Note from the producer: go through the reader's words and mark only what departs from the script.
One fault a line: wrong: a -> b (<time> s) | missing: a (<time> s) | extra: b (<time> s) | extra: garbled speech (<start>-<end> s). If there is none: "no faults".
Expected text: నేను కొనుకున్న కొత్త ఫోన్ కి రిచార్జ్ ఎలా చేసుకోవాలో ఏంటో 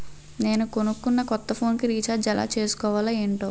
no faults